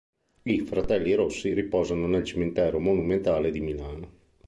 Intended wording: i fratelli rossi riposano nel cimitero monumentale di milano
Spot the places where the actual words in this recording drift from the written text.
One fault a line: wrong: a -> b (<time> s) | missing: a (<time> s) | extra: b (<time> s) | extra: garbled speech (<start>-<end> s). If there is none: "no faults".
no faults